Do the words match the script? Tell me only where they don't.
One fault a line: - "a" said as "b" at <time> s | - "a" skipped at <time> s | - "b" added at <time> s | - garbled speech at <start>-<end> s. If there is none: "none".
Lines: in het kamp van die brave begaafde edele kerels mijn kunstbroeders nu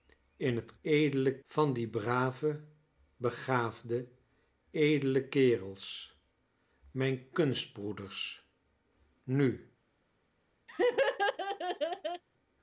- "kamp" said as "edele" at 0.8 s